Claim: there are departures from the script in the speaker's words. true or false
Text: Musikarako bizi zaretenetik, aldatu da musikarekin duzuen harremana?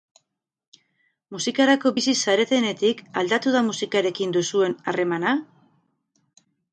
false